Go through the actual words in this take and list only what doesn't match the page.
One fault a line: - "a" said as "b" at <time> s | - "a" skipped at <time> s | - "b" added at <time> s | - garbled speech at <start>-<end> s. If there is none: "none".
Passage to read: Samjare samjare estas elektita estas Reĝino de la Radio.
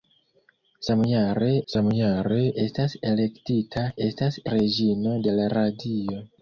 none